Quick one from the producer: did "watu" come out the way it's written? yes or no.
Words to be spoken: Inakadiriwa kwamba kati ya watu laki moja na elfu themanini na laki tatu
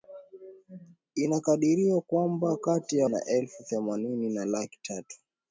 no